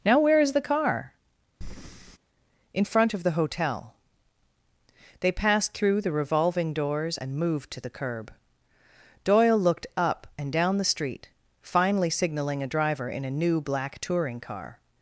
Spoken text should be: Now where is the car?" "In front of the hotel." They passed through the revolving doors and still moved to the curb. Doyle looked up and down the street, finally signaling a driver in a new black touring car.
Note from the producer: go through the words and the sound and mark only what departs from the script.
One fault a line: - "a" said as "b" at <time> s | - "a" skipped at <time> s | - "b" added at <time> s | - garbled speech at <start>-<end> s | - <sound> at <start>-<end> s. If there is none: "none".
- breath at 1.6-2.2 s
- "still" skipped at 7.4 s